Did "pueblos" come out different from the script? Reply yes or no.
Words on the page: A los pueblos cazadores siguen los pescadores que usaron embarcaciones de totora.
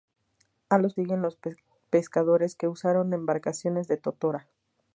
yes